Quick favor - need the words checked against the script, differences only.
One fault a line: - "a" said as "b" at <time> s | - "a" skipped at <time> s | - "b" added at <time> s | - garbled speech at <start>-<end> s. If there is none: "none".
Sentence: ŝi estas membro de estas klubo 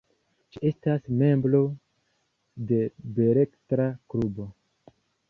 - "estas" said as "beletra" at 3.2 s